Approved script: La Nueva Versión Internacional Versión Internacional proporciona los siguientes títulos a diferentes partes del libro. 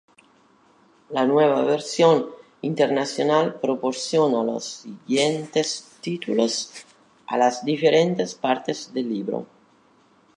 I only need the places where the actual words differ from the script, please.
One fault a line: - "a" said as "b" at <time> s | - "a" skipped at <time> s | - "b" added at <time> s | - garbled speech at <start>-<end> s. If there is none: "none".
- "Versión Internacional" skipped at 3.5 s
- "las" added at 7.4 s